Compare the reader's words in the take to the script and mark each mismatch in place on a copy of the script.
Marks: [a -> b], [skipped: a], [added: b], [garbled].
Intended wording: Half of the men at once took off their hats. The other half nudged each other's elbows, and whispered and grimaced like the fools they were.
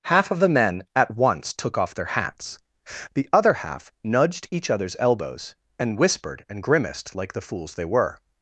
Half of the men at once took off their hats. The other half nudged each other's elbows, and whispered and grimaced like the fools they were.